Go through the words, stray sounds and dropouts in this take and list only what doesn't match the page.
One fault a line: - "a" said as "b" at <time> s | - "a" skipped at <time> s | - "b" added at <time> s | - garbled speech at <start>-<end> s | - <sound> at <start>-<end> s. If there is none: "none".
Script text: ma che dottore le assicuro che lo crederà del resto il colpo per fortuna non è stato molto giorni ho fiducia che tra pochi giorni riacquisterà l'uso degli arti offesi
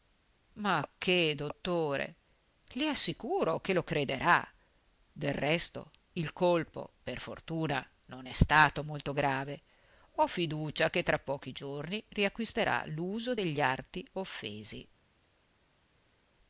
- "giorni" said as "grave" at 9.1 s